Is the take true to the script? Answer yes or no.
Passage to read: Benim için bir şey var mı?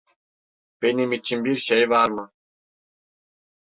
yes